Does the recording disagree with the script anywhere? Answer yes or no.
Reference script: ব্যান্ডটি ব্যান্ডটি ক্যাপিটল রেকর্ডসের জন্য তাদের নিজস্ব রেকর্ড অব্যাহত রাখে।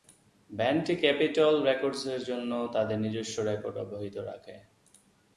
yes